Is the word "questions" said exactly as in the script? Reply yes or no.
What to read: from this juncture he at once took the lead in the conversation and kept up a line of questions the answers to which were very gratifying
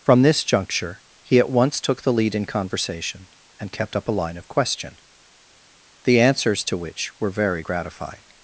no